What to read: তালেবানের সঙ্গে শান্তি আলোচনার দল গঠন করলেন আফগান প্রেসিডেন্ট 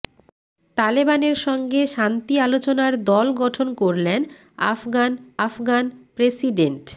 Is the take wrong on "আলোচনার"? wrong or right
right